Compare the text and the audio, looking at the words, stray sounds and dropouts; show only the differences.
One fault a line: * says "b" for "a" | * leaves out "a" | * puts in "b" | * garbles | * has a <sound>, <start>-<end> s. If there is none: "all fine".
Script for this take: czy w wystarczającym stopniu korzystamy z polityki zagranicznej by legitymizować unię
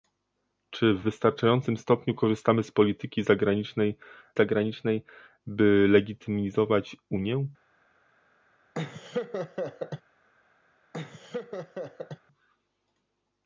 * puts in "zagranicznej"
* has a laugh, 8.7-10.0 s
* has a laugh, 10.9-12.2 s